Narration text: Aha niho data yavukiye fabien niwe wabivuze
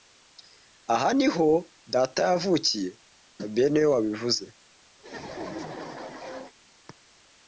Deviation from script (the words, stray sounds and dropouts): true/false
true